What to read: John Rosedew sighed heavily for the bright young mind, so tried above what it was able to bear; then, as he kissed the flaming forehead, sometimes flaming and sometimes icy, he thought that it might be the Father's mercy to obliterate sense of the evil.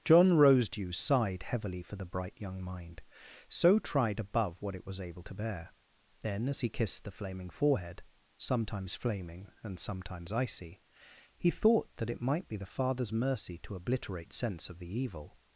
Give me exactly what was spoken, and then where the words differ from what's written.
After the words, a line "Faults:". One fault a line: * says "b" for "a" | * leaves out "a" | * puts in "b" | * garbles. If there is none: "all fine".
John Rosedew sighed heavily for the bright young mind, so tried above what it was able to bear; then, as he kissed the flaming forehead, sometimes flaming and sometimes icy, he thought that it might be the Father's mercy to obliterate sense of the evil.
Faults:
all fine